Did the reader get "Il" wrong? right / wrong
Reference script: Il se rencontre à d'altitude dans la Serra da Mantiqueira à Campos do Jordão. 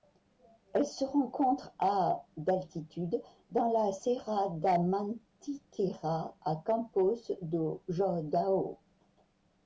wrong